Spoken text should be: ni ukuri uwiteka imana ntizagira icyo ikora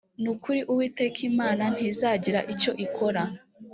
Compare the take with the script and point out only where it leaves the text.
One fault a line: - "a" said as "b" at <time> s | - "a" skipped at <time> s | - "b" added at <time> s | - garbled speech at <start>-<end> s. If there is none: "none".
none